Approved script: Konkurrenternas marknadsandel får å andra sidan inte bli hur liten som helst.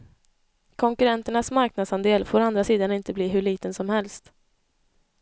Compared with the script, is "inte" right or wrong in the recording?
right